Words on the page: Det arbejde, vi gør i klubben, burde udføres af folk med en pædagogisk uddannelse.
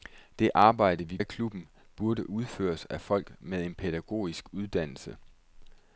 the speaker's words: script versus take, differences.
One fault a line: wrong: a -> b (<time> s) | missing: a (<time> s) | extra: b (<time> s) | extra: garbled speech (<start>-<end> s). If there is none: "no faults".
missing: gør (1.2 s)